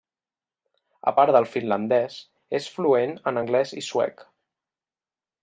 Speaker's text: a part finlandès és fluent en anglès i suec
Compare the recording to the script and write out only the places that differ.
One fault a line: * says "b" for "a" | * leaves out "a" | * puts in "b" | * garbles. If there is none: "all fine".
* puts in "del"